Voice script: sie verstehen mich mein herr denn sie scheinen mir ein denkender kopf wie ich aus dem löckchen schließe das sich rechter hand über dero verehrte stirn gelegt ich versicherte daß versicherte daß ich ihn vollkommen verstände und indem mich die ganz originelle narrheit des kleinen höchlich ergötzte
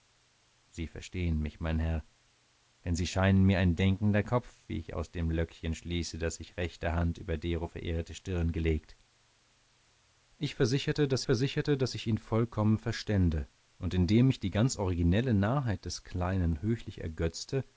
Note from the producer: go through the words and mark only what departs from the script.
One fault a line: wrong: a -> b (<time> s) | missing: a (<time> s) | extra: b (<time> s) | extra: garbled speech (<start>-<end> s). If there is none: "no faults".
no faults